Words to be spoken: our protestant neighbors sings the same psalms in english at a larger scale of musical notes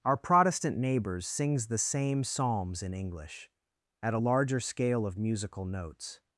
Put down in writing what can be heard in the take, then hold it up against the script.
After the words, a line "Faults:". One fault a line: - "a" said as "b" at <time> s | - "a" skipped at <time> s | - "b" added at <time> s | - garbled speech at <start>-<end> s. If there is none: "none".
our protestant neighbors sings the same psalms in english at a larger scale of musical notes
Faults:
none